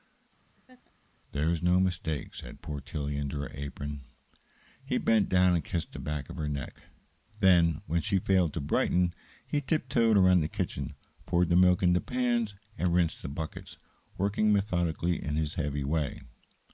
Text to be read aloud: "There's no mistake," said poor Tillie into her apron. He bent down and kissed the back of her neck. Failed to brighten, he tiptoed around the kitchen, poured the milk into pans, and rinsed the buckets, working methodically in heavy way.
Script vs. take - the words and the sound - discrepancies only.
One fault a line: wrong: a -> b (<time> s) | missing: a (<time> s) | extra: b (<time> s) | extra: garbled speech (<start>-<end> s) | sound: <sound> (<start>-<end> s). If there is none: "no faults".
sound: laugh (0.5-0.9 s)
extra: Then when she (7.4 s)
extra: his (15.4 s)